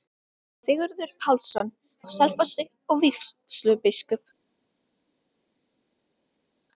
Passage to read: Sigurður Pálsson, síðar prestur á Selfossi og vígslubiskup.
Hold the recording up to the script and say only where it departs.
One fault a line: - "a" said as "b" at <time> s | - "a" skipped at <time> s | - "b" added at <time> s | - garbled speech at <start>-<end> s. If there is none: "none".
- "síðar prestur" skipped at 1.7 s